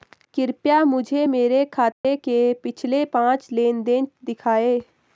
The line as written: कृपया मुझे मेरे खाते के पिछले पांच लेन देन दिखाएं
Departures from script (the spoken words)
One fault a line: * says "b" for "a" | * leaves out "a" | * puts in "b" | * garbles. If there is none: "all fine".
all fine